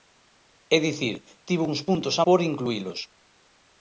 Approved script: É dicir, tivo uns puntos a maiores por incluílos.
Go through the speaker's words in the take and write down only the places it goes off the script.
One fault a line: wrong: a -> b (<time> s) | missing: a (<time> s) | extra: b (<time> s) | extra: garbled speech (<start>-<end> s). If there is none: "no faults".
missing: maiores (2.2 s)